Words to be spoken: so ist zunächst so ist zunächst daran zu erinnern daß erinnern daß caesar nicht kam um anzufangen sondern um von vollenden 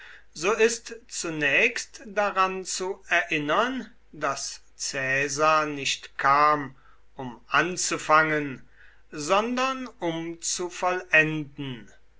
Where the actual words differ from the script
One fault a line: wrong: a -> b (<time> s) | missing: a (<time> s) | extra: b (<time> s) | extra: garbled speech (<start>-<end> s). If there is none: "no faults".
missing: so ist zunächst (2.0 s)
missing: erinnern daß (4.6 s)
wrong: von -> zu (10.4 s)